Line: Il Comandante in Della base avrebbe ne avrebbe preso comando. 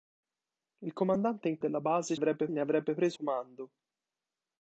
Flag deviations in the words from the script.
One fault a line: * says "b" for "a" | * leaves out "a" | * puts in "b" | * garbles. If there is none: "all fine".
all fine